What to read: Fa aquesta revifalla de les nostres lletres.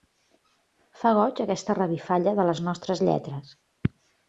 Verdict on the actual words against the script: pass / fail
fail